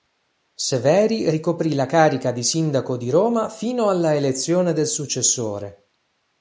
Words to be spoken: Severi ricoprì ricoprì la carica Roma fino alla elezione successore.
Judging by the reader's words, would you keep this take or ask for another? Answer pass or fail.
fail